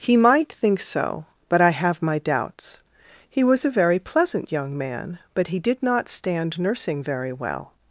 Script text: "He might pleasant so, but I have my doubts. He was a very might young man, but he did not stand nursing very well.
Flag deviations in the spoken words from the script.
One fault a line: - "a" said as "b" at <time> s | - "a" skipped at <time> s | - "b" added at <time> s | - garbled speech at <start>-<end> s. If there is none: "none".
- "pleasant" said as "think" at 0.5 s
- "might" said as "pleasant" at 4.0 s